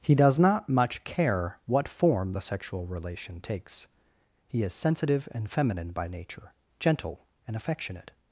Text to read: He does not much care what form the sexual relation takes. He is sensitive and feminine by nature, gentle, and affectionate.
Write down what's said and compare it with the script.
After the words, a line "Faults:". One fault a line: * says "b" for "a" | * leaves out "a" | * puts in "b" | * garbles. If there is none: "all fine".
He does not much care what form the sexual relation takes. He is sensitive and feminine by nature, gentle, and affectionate.
Faults:
all fine